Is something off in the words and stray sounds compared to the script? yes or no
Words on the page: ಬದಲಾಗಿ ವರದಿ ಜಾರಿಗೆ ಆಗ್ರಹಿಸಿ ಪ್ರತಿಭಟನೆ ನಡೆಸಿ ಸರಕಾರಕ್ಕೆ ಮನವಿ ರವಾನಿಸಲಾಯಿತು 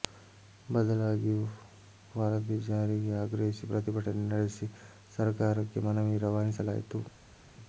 no